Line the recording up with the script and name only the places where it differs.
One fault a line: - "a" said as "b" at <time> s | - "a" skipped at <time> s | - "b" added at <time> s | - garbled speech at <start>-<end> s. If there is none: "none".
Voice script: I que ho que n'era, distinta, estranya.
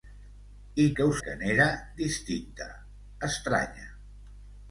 none